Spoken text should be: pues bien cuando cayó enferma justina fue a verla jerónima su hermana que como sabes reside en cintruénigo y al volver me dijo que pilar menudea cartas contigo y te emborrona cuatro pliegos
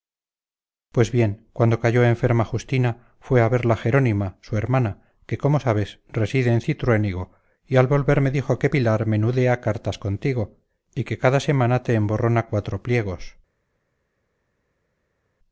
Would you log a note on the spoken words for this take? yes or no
yes